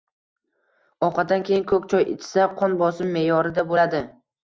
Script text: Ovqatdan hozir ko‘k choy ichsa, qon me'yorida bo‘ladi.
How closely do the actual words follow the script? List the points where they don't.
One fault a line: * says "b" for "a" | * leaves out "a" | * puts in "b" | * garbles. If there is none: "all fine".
* says "keyin" for "hozir"
* puts in "bosimi"